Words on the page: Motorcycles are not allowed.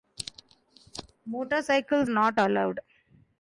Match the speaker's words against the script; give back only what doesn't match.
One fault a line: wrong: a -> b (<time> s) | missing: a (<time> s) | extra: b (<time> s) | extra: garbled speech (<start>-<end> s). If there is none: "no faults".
missing: are (2.1 s)